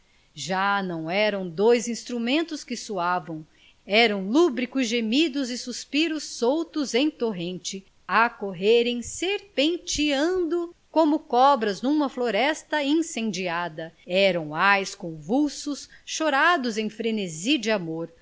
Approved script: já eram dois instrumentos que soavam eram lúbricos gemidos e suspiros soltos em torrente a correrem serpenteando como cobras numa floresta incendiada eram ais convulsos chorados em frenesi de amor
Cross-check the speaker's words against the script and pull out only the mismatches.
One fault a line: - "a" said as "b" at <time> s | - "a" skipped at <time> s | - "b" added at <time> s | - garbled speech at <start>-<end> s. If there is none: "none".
- "não" added at 0.8 s